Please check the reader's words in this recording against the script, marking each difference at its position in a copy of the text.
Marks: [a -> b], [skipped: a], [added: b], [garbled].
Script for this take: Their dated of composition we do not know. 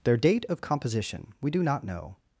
Their [dated -> date] of composition we do not know.